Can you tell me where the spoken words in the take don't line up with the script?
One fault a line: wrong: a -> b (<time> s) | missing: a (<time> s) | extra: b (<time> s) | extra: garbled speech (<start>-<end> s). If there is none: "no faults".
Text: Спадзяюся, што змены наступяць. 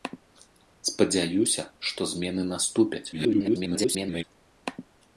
extra: garbled speech (3.1-4.2 s)